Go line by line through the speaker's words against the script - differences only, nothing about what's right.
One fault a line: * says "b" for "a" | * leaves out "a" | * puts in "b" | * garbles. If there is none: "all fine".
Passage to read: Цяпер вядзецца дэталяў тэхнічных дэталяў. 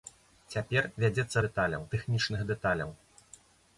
all fine